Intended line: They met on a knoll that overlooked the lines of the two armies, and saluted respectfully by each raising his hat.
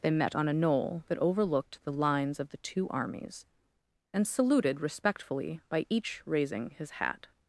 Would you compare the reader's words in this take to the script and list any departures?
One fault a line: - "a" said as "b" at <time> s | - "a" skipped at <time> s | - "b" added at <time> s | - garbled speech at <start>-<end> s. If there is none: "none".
none